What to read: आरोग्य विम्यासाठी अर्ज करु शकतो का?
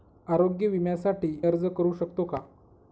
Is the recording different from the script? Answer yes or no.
no